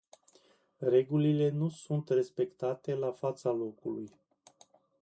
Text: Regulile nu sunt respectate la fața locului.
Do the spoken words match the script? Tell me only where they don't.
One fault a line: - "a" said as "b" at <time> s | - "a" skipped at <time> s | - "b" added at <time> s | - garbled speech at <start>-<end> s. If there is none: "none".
none